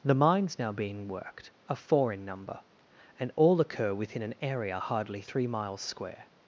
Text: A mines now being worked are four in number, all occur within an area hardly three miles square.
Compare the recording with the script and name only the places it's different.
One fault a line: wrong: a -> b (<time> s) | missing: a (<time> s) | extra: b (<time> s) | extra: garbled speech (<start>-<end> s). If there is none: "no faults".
wrong: A -> The (0.0 s)
extra: and (3.2 s)